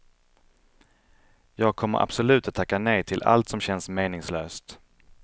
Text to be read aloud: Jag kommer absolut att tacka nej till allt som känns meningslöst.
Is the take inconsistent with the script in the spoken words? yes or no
no